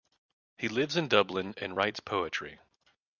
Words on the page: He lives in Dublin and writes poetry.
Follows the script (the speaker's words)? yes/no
yes